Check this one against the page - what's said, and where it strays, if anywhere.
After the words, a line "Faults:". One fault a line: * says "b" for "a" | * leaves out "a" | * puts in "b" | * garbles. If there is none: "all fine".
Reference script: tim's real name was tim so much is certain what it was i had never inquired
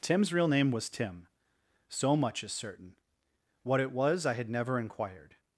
tim's real name was tim so much is certain what it was i had never inquired
Faults:
all fine